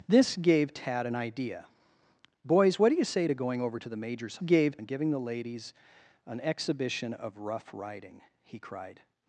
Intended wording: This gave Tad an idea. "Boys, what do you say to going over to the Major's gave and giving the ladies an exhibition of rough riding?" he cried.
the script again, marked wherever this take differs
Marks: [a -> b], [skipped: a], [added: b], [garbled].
This gave Tad an idea. "Boys, what do you say to going over to the Major's gave and giving the ladies an exhibition of rough riding?" he cried.